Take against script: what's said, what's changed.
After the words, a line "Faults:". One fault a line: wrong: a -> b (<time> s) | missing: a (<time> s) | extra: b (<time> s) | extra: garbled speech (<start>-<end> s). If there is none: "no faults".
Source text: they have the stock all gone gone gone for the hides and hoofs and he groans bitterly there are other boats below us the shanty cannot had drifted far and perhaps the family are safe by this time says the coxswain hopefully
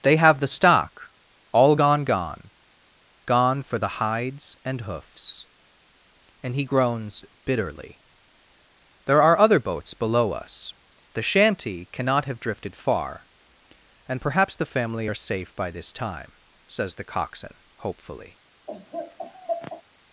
they have the stock all gone gone gone for the hides and hoofs and he groans bitterly there are other boats below us the shanty cannot have drifted far and perhaps the family are safe by this time says the coxswain hopefully
Faults:
wrong: had -> have (12.3 s)